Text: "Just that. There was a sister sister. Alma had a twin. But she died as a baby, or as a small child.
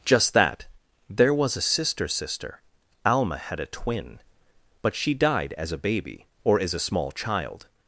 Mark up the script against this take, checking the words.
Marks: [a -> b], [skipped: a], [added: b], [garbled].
"Just that. There was a sister sister. Alma had a twin. But she died as a baby, or as a small child.